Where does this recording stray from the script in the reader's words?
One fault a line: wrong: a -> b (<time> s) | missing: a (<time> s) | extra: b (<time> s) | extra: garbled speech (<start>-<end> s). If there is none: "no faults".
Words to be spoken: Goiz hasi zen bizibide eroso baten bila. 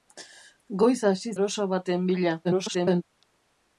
missing: zen bizibide (1.4 s)
extra: garbled speech (2.4-3.0 s)